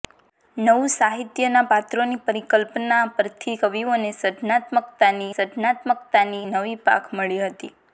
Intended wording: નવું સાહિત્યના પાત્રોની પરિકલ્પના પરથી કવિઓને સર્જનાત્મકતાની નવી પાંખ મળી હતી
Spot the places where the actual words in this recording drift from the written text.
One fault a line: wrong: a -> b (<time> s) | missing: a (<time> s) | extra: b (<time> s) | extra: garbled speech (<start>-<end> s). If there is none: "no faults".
extra: સર્જનાત્મકતાની (5.3 s)